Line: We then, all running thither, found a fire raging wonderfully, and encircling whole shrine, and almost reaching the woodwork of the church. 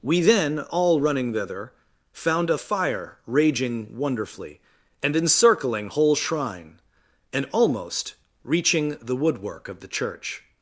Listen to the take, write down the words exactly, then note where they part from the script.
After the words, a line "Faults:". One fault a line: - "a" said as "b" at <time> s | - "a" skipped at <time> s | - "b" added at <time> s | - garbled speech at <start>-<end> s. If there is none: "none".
We then, all running thither, found a fire raging wonderfully, and encircling whole shrine, and almost reaching the woodwork of the church.
Faults:
none